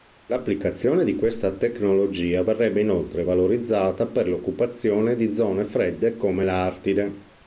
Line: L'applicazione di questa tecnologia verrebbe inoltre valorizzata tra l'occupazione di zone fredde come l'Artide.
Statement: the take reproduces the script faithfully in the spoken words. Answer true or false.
false